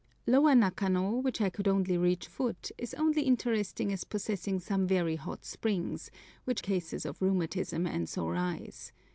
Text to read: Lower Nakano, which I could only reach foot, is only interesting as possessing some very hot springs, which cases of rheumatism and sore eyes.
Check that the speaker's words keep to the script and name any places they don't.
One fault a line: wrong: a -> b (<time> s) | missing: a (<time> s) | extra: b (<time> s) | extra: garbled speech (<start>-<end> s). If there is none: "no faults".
no faults